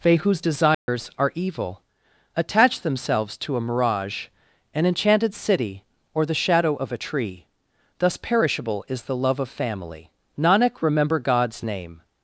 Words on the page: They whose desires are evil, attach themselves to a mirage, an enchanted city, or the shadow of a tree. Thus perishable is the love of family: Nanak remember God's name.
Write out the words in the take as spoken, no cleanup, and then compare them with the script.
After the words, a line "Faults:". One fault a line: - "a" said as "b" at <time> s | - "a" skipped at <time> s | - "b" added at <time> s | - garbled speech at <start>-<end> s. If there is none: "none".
They whose desires are evil, attach themselves to a mirage, an enchanted city, or the shadow of a tree. Thus perishable is the love of family: Nanak remember God's name.
Faults:
none